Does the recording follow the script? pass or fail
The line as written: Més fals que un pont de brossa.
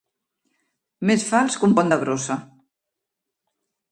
pass